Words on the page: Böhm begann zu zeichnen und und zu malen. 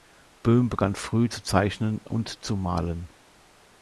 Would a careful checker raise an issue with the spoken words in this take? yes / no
yes